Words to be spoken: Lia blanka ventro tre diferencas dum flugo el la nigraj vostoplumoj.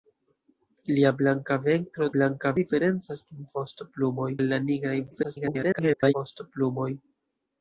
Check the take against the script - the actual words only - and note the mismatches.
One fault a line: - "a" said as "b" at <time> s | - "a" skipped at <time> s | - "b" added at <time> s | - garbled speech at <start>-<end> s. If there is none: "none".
- "tre" said as "blanka" at 2.1 s
- "flugo" said as "vostoplumoj" at 3.6 s
- garbled speech at 5.1-6.1 s